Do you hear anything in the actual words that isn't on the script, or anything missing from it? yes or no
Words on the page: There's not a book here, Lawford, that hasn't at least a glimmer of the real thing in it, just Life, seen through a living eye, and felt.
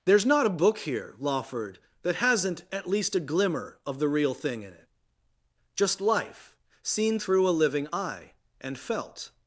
no